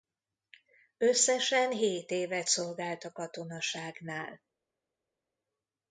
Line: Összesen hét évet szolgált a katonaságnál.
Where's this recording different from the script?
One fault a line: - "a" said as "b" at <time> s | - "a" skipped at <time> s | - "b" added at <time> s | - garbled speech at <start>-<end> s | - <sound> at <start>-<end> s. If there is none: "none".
none